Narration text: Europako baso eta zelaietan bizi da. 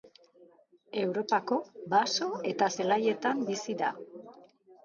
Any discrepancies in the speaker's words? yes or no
no